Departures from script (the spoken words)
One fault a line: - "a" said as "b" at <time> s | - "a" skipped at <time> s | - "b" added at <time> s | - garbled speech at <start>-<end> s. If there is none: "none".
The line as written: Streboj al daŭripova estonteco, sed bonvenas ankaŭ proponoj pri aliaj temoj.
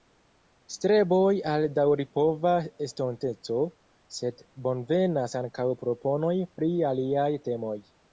none